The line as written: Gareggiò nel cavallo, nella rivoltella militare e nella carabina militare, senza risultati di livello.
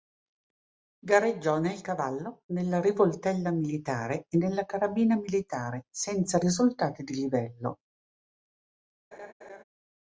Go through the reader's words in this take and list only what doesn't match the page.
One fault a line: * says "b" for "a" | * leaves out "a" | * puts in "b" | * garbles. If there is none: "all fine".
all fine